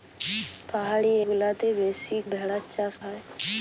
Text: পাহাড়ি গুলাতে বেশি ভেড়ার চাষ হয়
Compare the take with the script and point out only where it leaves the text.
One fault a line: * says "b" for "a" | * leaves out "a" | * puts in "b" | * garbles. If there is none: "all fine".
all fine